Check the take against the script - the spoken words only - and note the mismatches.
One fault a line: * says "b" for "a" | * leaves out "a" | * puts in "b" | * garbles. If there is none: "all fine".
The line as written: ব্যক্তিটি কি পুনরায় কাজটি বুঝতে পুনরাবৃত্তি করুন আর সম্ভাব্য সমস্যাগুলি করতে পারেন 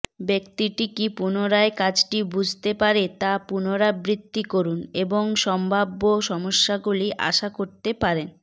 * puts in "পারে তা"
* says "এবং" for "আর"
* puts in "আশা"